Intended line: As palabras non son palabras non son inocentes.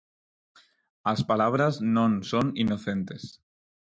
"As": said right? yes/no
yes